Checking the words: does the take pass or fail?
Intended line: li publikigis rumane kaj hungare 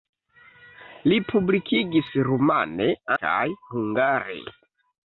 pass